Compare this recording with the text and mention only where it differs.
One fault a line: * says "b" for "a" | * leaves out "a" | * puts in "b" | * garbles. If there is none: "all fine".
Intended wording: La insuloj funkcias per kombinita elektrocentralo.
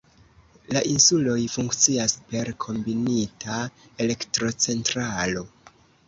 all fine